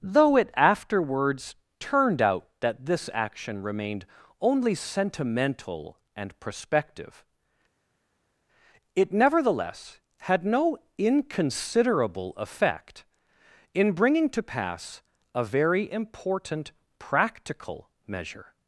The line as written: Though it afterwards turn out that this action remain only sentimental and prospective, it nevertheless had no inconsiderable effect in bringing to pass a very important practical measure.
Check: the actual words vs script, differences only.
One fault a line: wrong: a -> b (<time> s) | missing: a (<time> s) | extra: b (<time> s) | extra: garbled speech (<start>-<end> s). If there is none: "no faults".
wrong: turn -> turned (1.8 s)
wrong: remain -> remained (3.6 s)